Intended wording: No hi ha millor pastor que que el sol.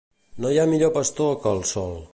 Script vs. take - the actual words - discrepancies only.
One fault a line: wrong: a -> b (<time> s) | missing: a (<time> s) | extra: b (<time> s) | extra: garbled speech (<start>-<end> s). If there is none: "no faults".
missing: que (1.5 s)